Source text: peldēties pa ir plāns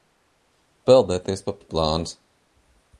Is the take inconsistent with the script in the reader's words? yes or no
no